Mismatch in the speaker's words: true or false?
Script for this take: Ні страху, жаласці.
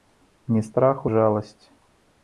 false